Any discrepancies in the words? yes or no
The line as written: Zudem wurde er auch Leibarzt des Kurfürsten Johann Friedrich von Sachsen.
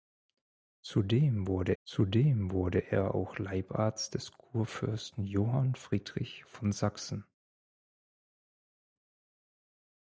yes